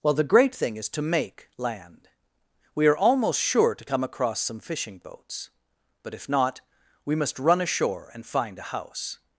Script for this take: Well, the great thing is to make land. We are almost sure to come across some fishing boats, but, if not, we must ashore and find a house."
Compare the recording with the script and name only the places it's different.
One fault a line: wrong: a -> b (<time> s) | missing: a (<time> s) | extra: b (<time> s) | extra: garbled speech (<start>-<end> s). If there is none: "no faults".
extra: run (7.4 s)